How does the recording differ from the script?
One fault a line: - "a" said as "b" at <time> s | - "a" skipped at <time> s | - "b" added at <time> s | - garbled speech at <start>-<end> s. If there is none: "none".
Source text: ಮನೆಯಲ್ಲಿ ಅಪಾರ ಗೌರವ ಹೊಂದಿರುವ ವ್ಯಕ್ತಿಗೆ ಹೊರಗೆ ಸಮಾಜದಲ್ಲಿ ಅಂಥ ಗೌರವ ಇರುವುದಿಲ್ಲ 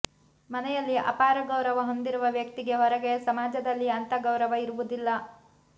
none